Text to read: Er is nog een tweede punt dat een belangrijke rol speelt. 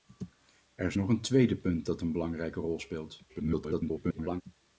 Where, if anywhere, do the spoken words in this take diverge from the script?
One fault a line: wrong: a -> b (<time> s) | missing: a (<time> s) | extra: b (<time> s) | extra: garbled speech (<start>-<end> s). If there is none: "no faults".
extra: garbled speech (3.3-4.4 s)